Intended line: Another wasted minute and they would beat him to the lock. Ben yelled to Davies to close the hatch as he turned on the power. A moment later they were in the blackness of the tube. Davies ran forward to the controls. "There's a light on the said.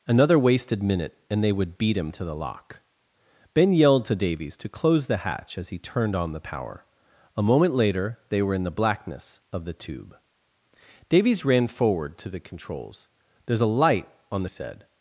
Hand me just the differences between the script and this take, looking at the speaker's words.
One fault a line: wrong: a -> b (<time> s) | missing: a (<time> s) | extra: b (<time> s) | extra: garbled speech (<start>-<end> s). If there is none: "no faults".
no faults